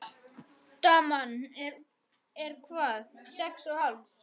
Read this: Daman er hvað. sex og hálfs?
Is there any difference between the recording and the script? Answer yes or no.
no